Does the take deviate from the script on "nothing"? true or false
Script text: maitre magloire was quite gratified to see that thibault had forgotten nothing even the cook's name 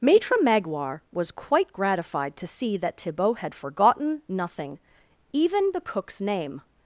false